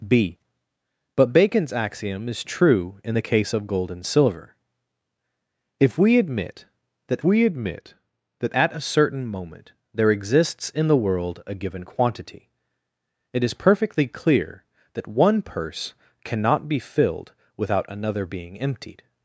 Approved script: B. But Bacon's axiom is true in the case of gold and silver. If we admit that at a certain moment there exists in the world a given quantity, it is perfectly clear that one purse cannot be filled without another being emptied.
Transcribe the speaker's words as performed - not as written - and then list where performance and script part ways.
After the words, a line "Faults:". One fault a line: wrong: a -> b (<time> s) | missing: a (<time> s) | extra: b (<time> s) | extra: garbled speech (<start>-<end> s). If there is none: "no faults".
B. But Bacon's axiom is true in the case of gold and silver. If we admit that we admit that at a certain moment there exists in the world a given quantity, it is perfectly clear that one purse cannot be filled without another being emptied.
Faults:
extra: we admit that (7.2 s)